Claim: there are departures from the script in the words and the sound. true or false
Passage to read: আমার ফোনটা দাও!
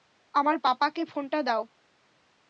true